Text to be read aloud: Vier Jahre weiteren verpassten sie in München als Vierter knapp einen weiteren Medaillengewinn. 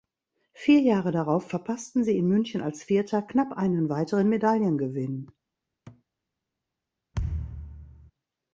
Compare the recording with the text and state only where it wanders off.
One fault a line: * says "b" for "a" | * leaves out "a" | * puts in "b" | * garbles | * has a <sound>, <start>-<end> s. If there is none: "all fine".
* says "darauf" for "weiteren"
* has a thud, 5.9-6.0 s
* has a thud, 7.1-8.1 s